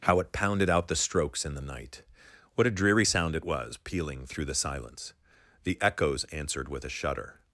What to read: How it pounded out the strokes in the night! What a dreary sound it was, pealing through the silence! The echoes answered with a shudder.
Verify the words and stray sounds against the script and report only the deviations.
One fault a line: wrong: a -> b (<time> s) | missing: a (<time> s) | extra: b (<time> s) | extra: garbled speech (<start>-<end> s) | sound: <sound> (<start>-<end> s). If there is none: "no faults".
no faults